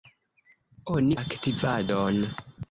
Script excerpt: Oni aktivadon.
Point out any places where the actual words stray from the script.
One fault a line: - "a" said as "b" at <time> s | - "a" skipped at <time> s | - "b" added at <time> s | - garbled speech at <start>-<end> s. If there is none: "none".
none